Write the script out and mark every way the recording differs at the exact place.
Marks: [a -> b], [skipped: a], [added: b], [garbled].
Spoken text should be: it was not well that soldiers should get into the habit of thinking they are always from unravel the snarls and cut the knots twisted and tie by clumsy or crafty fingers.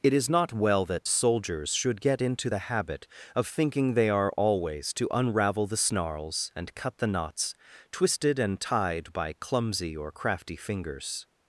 it [was -> is] not well that soldiers should get into the habit of thinking they are always [from -> to] unravel the snarls and cut the knots twisted and [tie -> tied] by clumsy or crafty fingers.